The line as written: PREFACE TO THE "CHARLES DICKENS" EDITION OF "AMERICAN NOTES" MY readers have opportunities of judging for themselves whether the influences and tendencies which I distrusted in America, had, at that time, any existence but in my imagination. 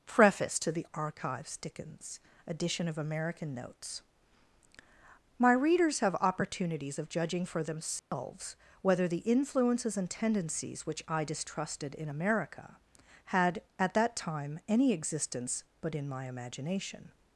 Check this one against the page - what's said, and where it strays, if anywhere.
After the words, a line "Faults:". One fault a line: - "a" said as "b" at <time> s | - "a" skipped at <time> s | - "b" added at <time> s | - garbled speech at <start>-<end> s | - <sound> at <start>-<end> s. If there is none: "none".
PREFACE TO THE "Archives DICKENS" EDITION OF "AMERICAN NOTES" MY readers have opportunities of judging for themselves whether the influences and tendencies which I distrusted in America, had, at that time, any existence but in my imagination.
Faults:
- "CHARLES" said as "Archives" at 0.9 s
- dropout at 8.0-8.1 s